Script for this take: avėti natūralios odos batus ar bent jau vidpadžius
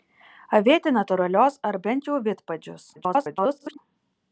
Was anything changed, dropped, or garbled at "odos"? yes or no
yes